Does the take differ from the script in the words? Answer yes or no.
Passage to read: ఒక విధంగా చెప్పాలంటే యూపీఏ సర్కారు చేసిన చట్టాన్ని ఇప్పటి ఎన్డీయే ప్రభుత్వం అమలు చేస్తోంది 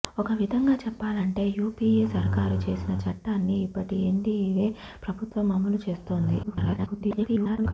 yes